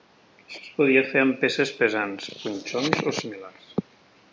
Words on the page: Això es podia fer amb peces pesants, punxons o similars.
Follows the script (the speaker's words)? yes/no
yes